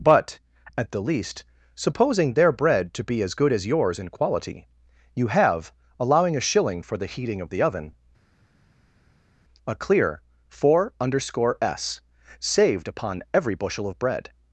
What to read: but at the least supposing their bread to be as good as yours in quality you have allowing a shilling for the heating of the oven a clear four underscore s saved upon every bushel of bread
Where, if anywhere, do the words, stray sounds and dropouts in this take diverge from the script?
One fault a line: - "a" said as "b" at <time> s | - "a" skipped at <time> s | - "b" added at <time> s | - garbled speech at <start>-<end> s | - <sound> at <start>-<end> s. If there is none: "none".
none